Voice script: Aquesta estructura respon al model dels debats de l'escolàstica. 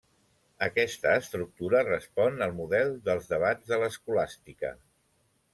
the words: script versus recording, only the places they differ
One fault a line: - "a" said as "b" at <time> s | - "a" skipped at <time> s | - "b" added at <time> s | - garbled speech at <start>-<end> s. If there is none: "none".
none